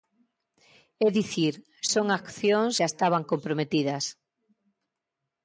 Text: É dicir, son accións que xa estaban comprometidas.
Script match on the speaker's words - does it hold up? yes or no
no